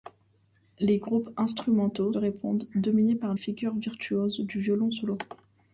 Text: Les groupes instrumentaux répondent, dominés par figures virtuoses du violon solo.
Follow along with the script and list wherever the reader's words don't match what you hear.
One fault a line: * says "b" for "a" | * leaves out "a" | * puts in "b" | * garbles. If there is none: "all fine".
all fine